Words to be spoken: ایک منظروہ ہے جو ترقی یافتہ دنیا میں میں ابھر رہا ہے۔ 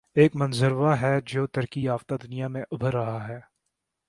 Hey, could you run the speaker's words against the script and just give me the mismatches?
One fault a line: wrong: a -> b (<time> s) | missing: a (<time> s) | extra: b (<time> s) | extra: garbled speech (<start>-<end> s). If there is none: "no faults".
missing: میں (2.6 s)